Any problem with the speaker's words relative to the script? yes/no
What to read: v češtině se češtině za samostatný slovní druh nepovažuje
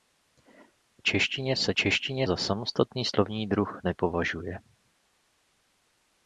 no